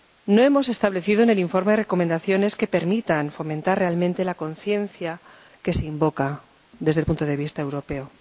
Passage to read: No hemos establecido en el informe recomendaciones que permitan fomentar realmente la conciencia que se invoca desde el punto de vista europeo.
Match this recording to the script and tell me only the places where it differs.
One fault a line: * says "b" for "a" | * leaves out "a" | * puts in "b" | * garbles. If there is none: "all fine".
all fine